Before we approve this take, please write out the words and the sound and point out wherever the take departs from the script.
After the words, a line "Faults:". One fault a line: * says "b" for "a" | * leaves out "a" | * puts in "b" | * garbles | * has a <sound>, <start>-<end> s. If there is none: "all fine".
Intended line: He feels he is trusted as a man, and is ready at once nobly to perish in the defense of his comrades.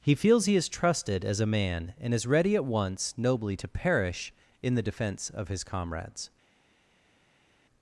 He feels he is trusted as a man, and is ready at once nobly to perish in the defense of his comrades.
Faults:
all fine